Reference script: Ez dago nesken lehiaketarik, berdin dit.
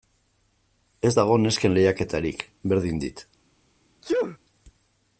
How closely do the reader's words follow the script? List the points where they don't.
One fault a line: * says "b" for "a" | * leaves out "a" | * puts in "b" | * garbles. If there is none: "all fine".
all fine